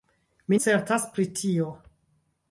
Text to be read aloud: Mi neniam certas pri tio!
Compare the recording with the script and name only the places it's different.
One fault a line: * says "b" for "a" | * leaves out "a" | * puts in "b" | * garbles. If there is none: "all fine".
* leaves out "neniam"